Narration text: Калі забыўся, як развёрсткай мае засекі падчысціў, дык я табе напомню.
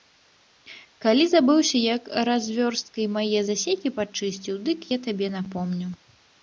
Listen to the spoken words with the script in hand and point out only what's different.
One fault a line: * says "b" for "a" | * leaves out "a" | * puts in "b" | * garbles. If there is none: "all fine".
all fine